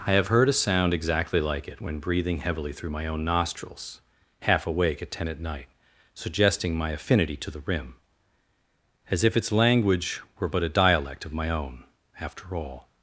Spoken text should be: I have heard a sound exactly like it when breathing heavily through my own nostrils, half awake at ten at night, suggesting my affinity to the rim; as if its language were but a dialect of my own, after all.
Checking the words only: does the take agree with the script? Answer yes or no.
yes